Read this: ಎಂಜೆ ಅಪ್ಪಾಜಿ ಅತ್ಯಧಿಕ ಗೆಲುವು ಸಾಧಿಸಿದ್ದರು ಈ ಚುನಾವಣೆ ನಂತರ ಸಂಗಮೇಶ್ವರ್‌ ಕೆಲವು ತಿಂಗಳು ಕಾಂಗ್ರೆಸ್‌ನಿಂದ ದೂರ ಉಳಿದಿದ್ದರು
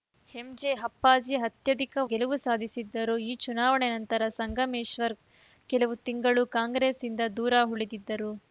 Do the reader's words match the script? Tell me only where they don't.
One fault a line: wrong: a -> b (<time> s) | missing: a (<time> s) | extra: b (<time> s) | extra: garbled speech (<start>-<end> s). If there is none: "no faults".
no faults